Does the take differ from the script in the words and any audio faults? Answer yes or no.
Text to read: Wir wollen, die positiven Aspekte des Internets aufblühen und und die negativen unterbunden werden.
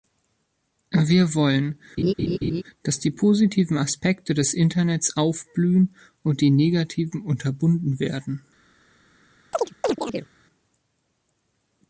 yes